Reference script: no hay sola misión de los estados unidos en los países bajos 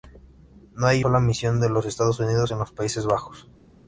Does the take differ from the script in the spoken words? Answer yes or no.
no